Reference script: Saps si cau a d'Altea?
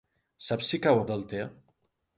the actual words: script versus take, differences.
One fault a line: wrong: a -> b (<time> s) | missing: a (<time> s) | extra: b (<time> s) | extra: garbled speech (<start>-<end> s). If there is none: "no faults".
no faults